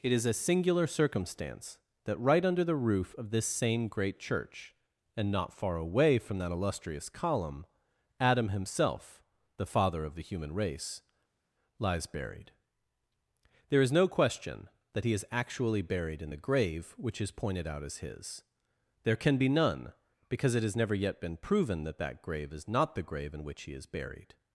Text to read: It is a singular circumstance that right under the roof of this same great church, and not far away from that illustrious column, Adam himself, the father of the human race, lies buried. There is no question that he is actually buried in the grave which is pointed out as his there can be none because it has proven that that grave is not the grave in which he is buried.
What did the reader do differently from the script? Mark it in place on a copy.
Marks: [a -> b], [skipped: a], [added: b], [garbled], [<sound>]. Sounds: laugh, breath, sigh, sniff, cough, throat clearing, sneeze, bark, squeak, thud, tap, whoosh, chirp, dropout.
It is a singular circumstance that right under the roof of this same great church, and not far away from that illustrious column, Adam himself, the father of the human race, lies buried. There is no question that he is actually buried in the grave which is pointed out as his there can be none because it has [added: never yet been] proven that that grave is not the grave in which he is buried.